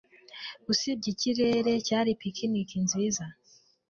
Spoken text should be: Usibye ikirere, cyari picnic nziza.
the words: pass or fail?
pass